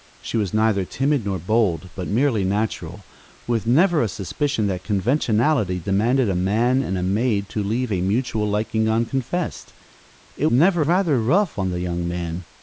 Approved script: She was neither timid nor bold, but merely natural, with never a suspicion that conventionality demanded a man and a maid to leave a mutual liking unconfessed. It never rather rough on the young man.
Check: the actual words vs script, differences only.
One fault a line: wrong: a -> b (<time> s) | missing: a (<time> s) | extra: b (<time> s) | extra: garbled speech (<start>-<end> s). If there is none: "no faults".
no faults